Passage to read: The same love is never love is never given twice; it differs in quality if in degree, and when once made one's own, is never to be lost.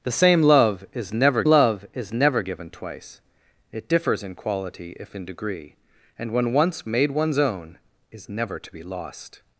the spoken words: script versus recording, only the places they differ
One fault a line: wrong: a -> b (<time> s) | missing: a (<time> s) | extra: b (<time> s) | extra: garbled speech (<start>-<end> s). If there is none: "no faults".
no faults